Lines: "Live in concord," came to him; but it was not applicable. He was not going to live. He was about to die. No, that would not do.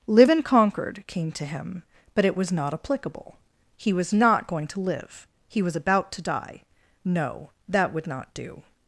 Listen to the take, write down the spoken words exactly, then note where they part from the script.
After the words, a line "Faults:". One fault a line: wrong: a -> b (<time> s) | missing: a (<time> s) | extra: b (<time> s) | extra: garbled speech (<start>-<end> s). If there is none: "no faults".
"Live in concord," came to him; but it was not applicable. He was not going to live. He was about to die. No, that would not do.
Faults:
no faults